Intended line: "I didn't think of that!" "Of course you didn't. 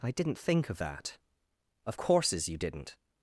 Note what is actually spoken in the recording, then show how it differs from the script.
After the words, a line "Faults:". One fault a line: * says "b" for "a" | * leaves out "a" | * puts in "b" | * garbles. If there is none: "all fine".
"I didn't think of that!" "Of courses you didn't.
Faults:
* says "courses" for "course"